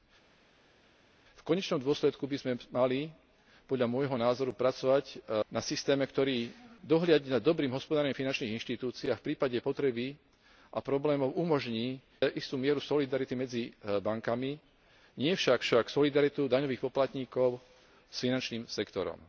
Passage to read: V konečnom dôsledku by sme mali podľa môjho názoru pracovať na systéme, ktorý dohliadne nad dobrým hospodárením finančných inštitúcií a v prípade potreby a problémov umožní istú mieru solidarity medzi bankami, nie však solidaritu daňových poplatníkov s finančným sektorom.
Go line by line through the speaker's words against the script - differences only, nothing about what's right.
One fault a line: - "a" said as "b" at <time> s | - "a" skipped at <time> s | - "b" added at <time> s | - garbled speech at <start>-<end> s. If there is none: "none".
- "však" added at 15.6 s